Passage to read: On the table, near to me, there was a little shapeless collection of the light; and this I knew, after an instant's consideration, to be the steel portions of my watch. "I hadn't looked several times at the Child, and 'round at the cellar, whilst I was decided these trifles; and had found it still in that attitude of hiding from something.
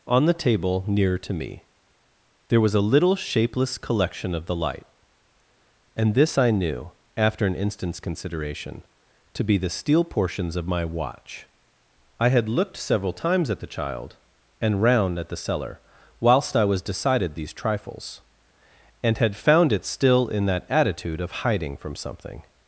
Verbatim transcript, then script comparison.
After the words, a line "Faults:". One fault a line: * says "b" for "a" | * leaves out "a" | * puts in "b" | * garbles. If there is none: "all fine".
On the table, near to me, there was a little shapeless collection of the light; and this I knew, after an instant's consideration, to be the steel portions of my watch. "I had looked several times at the Child, and 'round at the cellar, whilst I was decided these trifles; and had found it still in that attitude of hiding from something.
Faults:
* says "had" for "hadn't"